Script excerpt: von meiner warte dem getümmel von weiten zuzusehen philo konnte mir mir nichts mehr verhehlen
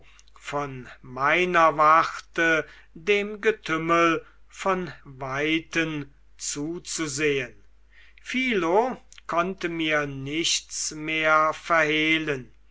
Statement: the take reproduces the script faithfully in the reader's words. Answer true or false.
false